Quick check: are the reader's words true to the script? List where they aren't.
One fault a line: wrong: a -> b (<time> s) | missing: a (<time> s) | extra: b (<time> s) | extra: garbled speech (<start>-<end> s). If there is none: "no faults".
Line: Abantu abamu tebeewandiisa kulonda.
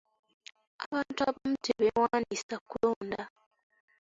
no faults